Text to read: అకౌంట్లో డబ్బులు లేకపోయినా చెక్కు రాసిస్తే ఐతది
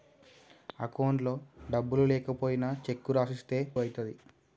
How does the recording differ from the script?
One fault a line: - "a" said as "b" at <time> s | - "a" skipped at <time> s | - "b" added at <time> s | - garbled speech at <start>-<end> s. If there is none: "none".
none